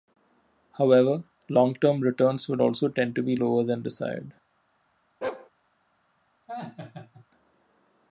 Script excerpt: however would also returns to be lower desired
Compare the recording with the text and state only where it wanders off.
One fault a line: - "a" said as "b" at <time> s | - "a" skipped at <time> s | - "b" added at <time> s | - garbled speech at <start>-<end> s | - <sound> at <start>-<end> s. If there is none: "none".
- "long term returns" added at 1.5 s
- "returns" said as "tend" at 2.9 s
- "than" added at 3.6 s
- bark at 5.2-5.5 s
- laugh at 6.5-7.3 s